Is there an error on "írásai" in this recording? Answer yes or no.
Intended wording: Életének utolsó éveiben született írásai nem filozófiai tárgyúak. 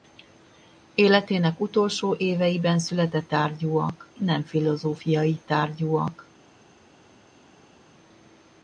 yes